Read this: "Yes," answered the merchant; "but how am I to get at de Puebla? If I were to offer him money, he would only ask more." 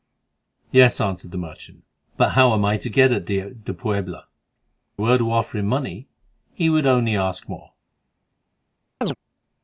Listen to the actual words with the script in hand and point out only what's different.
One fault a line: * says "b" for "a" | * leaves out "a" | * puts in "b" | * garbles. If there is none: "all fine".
* leaves out "If I"